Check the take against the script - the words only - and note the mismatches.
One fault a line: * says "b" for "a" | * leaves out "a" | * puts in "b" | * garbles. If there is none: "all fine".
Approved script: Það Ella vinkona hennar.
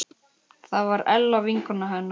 * puts in "var"